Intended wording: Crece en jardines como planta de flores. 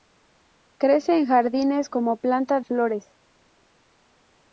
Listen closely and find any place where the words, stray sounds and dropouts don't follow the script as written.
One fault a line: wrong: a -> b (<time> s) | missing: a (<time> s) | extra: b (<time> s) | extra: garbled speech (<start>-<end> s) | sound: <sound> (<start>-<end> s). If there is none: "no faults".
missing: de (2.6 s)